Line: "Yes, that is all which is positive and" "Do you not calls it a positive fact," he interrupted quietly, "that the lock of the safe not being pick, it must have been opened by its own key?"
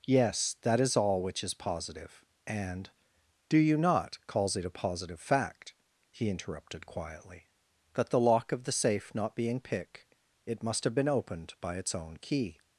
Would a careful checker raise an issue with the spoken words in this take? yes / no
no